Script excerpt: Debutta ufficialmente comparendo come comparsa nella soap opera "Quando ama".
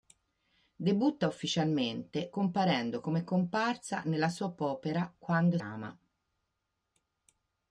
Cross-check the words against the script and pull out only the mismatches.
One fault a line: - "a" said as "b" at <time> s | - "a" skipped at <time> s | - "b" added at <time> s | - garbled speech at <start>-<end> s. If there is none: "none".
none